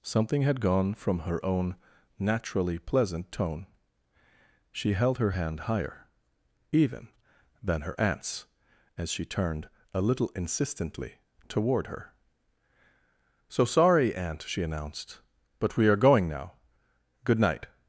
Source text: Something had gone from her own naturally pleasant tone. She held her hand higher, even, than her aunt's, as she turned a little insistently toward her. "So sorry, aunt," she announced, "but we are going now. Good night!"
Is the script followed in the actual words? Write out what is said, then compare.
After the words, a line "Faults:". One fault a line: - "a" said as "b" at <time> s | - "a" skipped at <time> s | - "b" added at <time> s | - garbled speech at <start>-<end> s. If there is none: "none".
Something had gone from her own naturally pleasant tone. She held her hand higher, even, than her aunt's, as she turned a little insistently toward her. "So sorry, aunt," she announced, "but we are going now. Good night!"
Faults:
none